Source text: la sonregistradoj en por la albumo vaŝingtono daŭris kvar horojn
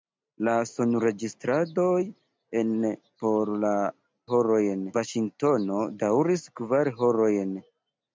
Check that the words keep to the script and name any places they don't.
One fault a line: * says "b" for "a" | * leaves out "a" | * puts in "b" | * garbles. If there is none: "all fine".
* says "horojn" for "albumo"